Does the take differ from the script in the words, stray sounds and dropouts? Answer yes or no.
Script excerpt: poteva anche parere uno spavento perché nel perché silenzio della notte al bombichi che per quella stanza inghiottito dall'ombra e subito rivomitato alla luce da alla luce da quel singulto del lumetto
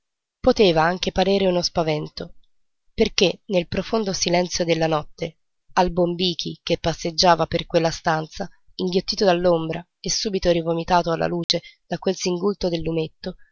yes